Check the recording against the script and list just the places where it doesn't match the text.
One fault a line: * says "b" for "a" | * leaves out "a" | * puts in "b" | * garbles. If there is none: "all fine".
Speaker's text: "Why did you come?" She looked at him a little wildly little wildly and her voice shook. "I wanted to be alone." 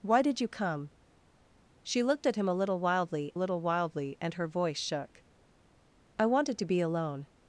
all fine